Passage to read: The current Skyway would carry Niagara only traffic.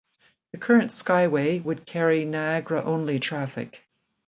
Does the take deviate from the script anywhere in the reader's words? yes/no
no